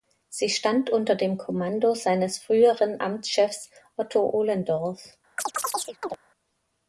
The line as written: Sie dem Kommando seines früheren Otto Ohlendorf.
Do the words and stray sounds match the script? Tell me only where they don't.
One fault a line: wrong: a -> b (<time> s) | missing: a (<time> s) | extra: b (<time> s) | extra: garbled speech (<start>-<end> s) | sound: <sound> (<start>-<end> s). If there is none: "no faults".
extra: stand unter (0.5 s)
extra: Amtschefs (3.0 s)
sound: chirp (5.4-6.2 s)